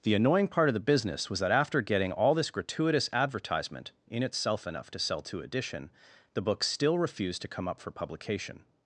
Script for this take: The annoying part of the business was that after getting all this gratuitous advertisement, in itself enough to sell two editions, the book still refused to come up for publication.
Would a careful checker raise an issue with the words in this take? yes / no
yes